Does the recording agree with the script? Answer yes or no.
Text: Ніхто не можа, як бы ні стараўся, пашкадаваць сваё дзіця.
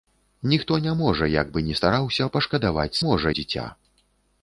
no